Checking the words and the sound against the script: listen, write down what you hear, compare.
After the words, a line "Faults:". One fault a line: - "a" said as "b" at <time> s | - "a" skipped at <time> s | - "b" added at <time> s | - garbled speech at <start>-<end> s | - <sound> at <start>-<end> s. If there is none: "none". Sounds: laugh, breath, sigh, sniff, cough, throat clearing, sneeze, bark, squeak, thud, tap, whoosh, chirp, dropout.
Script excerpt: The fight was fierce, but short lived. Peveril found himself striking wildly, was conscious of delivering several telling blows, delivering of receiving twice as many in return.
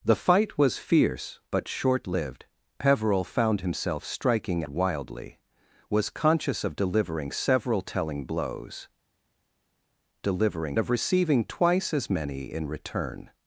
The fight was fierce, but short lived. Peveril found himself striking wildly, was conscious of delivering several telling blows, delivering of receiving twice as many in return.
Faults:
none